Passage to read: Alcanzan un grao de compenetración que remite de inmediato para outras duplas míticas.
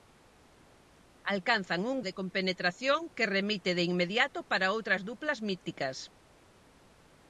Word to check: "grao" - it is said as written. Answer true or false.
false